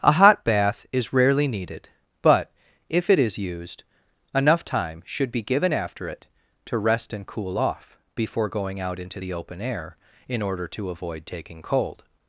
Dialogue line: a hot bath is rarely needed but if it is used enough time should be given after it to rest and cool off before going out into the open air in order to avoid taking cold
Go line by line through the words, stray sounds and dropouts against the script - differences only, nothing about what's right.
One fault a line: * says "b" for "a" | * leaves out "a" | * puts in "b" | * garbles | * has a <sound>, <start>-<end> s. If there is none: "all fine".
all fine